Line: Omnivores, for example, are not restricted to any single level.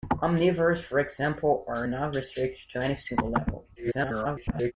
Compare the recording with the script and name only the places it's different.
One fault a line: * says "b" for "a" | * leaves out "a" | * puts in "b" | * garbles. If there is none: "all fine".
* garbles